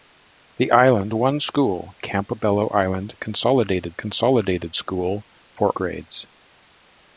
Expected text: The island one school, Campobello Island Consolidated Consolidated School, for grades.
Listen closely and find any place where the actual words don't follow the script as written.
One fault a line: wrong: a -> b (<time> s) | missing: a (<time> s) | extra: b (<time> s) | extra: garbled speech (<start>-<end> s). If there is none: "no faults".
no faults